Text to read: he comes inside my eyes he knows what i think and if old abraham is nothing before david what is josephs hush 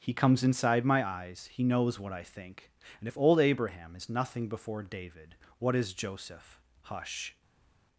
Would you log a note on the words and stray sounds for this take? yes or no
yes